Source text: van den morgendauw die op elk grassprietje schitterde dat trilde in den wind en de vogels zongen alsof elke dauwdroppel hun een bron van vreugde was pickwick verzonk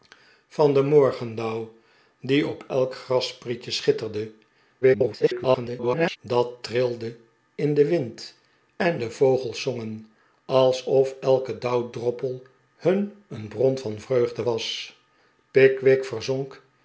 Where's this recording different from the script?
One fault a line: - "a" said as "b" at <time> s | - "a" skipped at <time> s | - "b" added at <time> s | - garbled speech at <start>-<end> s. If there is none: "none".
- garbled speech at 4.8-6.2 s